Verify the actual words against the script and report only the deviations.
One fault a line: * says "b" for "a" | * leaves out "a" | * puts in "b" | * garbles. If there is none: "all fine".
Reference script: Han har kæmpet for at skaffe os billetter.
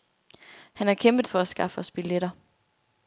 all fine